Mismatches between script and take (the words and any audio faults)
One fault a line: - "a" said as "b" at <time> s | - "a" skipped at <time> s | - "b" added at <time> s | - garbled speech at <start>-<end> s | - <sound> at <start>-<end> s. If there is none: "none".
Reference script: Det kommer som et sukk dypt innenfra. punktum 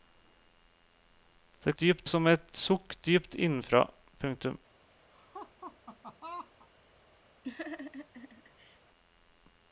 - "kommer" said as "dypt" at 1.8 s
- laugh at 5.1-6.7 s
- laugh at 7.4-8.8 s